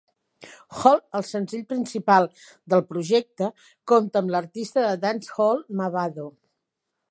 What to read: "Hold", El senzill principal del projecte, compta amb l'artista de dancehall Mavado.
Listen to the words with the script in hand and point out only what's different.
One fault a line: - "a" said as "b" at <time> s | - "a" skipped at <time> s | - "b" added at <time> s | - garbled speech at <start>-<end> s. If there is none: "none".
none